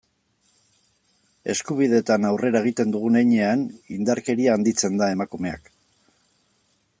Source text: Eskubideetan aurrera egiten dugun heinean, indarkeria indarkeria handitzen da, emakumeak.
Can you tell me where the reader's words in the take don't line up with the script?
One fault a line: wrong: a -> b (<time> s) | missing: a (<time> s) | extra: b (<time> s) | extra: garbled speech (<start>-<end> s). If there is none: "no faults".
missing: indarkeria (4.6 s)